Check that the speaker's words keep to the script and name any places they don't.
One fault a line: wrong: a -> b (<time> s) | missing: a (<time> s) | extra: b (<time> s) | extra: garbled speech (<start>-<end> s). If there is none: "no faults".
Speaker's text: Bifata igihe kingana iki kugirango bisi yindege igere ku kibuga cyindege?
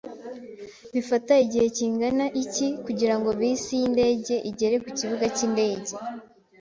no faults